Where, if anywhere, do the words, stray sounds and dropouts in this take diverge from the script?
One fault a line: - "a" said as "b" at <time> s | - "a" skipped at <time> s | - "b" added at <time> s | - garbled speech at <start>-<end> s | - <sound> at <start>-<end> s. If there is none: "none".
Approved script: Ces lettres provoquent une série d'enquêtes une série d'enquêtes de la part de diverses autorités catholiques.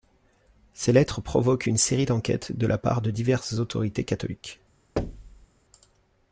- "une série d'enquêtes" skipped at 2.5 s
- thud at 5.0-5.5 s